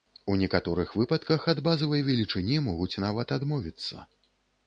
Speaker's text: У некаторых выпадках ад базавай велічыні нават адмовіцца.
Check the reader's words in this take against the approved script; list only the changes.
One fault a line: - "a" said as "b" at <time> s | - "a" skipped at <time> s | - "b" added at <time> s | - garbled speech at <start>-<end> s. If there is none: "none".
- "могуць" added at 2.7 s